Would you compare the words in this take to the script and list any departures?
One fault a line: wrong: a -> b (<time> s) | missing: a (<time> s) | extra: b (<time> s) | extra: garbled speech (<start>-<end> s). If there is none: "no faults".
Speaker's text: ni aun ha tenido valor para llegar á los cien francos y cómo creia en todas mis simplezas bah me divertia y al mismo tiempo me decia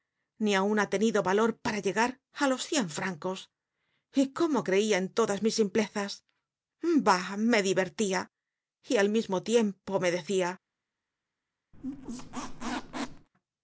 no faults